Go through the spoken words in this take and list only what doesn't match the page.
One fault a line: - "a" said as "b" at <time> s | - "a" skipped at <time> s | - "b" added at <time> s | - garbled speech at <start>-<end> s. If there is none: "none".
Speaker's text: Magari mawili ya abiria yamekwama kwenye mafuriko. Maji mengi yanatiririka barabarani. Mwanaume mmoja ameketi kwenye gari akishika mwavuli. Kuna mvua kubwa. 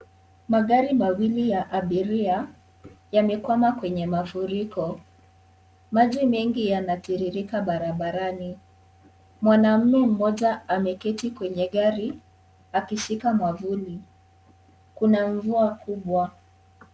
none